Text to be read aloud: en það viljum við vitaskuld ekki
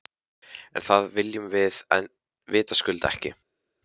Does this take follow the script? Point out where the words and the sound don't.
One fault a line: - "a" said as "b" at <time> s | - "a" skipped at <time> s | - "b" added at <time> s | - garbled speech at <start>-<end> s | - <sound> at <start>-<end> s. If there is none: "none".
none